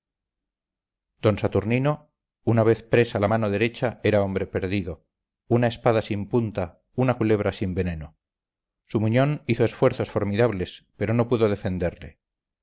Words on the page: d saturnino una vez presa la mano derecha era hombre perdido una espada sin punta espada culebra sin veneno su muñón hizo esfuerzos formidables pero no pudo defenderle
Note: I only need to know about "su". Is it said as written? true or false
true